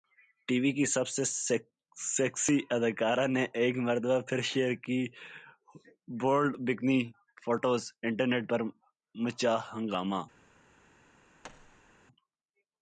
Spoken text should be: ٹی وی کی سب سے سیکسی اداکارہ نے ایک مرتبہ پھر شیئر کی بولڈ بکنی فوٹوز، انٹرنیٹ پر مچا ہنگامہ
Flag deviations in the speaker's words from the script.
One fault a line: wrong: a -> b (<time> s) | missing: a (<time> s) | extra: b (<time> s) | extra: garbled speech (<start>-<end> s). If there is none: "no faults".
no faults